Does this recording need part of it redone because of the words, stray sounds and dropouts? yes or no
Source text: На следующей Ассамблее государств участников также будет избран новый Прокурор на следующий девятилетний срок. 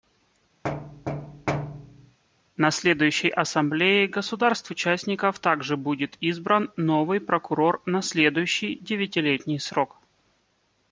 yes